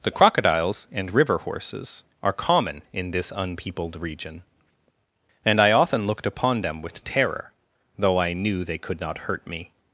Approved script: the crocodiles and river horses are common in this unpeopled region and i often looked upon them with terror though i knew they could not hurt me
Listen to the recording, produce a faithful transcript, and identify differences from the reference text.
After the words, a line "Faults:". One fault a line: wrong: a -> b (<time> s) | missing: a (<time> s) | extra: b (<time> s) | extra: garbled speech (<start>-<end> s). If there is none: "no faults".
the crocodiles and river horses are common in this unpeopled region and i often looked upon them with terror though i knew they could not hurt me
Faults:
no faults